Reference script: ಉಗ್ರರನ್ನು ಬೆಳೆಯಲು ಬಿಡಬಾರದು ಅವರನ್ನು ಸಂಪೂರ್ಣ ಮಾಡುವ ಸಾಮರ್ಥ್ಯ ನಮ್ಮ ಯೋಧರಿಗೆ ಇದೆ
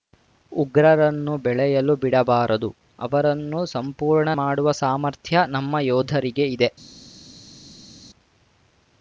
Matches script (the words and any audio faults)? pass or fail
pass